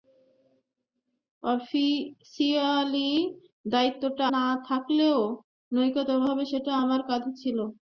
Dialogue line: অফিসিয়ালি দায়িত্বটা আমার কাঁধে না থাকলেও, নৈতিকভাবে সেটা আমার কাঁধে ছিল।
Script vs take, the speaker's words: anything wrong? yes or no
yes